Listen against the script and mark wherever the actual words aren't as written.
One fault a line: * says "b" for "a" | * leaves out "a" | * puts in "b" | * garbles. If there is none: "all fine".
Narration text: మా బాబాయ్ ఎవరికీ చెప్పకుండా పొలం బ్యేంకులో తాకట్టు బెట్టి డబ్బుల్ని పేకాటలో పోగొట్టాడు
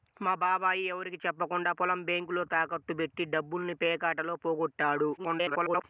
* garbles